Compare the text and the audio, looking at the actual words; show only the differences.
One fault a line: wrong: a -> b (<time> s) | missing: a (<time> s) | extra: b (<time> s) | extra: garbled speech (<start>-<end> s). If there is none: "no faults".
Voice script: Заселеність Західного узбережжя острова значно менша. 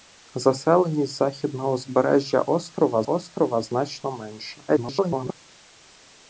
extra: острова (3.0 s)
extra: garbled speech (4.7-5.3 s)